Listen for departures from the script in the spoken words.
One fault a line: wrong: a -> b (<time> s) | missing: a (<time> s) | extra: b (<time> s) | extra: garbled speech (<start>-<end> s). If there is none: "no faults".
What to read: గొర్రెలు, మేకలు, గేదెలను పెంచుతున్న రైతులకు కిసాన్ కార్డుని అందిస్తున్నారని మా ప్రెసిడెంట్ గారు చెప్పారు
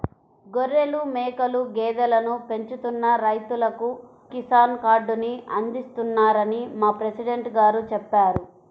no faults